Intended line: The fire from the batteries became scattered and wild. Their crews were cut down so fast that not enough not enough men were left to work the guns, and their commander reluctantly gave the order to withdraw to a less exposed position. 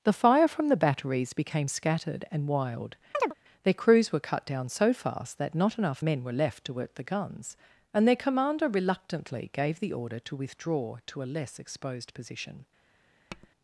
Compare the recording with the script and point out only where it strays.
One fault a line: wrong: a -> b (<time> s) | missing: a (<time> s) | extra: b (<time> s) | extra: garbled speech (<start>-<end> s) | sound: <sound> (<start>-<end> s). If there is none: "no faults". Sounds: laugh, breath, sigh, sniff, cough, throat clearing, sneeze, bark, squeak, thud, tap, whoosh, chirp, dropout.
sound: chirp (3.1-3.3 s)
missing: not enough (6.0 s)
sound: tap (13.3-13.5 s)